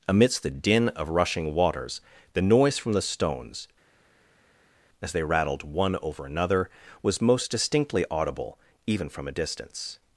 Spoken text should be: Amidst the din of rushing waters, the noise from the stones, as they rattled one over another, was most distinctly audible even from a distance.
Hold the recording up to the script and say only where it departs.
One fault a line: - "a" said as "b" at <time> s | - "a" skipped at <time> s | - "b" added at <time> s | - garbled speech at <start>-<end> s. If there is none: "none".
none